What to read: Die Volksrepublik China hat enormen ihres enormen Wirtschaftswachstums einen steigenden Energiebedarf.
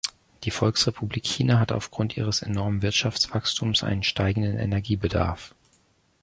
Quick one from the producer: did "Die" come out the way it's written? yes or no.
yes